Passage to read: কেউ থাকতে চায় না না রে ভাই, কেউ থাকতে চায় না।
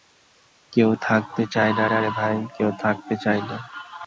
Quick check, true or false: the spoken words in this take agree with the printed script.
true